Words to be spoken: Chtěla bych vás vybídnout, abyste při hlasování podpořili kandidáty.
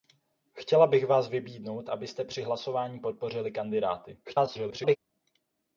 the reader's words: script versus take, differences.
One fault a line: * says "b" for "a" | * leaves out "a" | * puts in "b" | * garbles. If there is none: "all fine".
* garbles